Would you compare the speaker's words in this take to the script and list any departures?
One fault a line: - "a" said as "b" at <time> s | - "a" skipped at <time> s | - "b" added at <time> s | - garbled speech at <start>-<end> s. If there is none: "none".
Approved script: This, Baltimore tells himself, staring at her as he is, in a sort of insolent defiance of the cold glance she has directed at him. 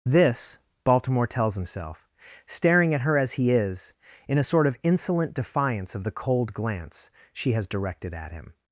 none